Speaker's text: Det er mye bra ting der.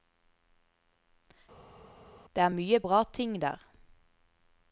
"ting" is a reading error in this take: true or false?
false